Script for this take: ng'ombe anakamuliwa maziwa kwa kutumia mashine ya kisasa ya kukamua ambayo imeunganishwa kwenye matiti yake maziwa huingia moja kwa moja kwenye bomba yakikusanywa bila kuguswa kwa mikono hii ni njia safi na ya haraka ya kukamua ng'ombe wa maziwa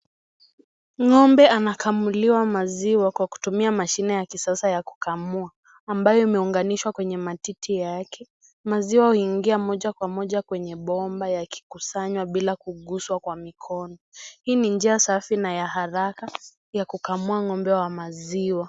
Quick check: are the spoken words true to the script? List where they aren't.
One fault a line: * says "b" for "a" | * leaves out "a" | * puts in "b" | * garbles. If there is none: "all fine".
all fine